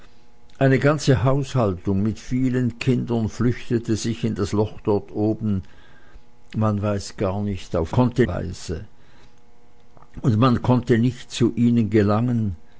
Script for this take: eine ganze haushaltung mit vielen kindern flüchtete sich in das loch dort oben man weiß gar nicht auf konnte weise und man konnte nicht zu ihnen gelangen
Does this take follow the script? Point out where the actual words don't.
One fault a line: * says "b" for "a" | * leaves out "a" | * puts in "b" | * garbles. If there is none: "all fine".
all fine